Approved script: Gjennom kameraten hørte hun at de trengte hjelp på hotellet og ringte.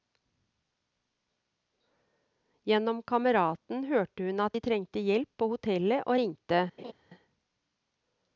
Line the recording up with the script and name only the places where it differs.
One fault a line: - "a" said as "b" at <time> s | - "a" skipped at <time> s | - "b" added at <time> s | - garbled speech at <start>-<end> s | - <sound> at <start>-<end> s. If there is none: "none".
- laugh at 6.8-6.9 s